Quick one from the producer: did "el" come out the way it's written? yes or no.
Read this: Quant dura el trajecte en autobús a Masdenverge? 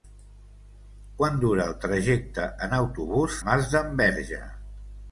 yes